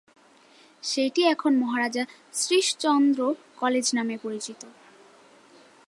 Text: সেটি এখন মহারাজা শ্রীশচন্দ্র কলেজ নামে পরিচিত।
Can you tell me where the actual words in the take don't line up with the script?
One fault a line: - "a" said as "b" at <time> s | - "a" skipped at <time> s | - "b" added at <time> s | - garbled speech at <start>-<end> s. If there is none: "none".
none